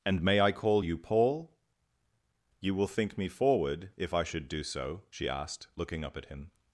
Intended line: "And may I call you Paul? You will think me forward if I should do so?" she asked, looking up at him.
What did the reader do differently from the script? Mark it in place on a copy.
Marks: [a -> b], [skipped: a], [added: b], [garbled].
"And may I call you Paul? You will think me forward if I should do so?" she asked, looking up at him.